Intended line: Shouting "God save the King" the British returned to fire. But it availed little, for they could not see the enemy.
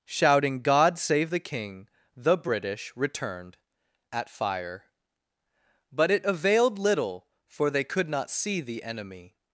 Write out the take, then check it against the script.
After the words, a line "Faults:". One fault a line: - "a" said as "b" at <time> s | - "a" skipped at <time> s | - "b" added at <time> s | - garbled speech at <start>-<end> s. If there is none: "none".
Shouting "God save the King" the British returned at fire. But it availed little, for they could not see the enemy.
Faults:
- "to" said as "at" at 4.1 s